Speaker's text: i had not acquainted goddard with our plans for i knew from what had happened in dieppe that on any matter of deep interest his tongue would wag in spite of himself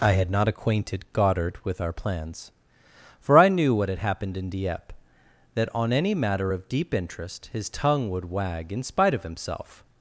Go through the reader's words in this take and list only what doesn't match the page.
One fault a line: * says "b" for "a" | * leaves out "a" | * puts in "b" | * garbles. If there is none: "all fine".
* leaves out "from"